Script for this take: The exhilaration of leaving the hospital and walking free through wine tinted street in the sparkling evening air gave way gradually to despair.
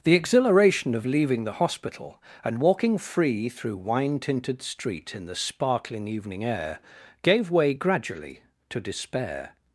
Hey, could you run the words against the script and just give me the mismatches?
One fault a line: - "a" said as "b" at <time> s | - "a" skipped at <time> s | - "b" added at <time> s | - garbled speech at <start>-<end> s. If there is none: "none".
none